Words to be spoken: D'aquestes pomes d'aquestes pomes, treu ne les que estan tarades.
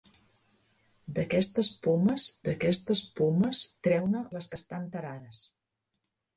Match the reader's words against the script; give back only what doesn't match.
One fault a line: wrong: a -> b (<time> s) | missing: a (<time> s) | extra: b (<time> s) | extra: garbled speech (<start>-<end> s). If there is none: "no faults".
no faults